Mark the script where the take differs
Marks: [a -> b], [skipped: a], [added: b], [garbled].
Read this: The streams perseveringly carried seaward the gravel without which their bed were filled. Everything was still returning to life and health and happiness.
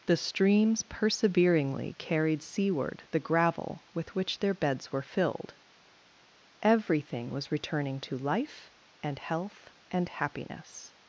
The streams perseveringly carried seaward the gravel [without -> with] which their [bed -> beds] were filled. Everything was [skipped: still] returning to life and health and happiness.